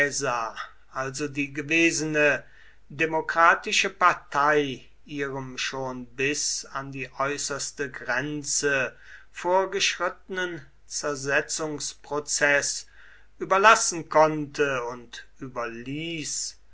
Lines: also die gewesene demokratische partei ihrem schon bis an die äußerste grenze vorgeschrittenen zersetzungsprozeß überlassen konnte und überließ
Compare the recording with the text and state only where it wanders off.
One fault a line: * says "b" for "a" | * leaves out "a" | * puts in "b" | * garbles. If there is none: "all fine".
all fine